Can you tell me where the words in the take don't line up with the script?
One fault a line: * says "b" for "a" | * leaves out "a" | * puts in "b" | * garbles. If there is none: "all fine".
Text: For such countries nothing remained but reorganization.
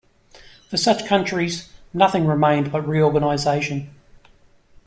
all fine